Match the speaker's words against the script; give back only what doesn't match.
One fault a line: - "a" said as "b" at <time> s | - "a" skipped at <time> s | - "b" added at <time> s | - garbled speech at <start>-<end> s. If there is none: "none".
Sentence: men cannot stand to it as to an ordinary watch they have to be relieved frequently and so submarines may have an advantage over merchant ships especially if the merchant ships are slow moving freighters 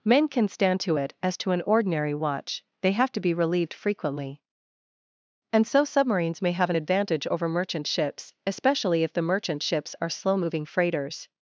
- "cannot" said as "can" at 0.3 s